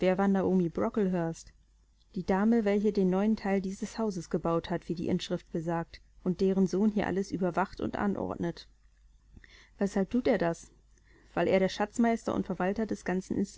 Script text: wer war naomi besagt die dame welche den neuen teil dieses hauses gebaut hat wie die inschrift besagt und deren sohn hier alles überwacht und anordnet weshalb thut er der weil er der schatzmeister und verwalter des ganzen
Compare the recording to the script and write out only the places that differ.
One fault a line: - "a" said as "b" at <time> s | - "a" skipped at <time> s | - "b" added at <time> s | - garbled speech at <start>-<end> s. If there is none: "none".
- "besagt" said as "brocklehurst" at 0.7 s
- "der" said as "das" at 10.4 s